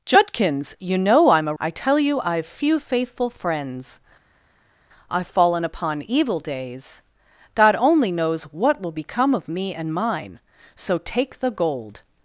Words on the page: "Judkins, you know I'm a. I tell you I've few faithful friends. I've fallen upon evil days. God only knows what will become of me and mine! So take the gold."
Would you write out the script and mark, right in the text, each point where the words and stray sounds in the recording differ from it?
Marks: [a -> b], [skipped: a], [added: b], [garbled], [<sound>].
"Judkins, you know I'm a. I tell you I've few faithful friends. I've fallen upon evil days. God only knows what will become of me and mine! So take the gold."